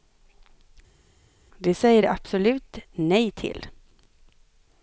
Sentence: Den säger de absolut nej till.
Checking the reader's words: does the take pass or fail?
fail